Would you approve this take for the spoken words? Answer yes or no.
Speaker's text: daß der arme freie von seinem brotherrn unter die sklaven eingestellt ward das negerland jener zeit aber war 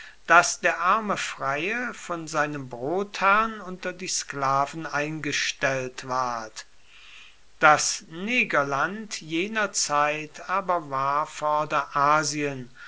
yes